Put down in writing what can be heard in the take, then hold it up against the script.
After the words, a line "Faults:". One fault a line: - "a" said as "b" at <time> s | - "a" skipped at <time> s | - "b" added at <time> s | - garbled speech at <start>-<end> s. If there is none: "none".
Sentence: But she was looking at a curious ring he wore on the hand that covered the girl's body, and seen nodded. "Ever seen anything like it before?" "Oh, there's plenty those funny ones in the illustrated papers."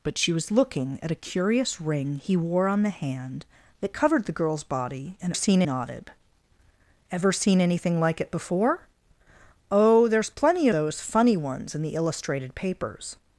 But she was looking at a curious ring he wore on the hand that covered the girl's body, and seen nodded. "Ever seen anything like it before?" "Oh, there's plenty those funny ones in the illustrated papers."
Faults:
none